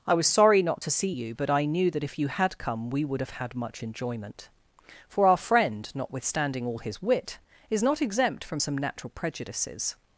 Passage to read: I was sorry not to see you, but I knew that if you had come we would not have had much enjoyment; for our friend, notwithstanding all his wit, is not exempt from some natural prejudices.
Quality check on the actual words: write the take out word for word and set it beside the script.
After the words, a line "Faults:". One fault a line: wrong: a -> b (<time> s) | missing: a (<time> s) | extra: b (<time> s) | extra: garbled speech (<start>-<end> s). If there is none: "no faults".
I was sorry not to see you, but I knew that if you had come we would have had much enjoyment; for our friend, notwithstanding all his wit, is not exempt from some natural prejudices.
Faults:
missing: not (3.2 s)